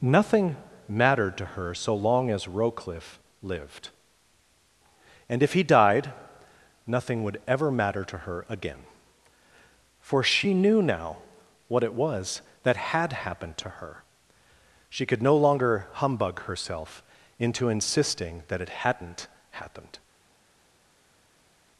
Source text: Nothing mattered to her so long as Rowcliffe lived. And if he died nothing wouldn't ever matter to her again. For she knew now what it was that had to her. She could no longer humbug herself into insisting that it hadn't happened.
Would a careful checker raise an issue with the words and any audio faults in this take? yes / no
yes